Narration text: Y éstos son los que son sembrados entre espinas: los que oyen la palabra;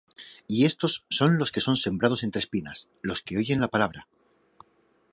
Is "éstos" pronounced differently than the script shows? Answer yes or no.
no